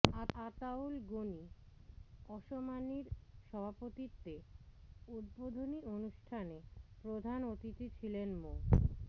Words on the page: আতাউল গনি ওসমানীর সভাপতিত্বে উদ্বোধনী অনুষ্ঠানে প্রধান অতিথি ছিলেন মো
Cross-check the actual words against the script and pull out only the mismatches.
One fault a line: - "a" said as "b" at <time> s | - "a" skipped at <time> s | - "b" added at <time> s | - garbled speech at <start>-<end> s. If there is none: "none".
none